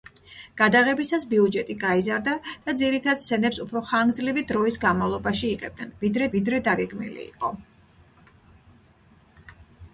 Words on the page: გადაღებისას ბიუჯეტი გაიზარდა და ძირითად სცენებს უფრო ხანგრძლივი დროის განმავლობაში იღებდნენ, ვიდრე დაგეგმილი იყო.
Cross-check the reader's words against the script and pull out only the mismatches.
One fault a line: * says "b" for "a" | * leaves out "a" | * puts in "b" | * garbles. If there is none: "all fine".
* puts in "ვიდრე"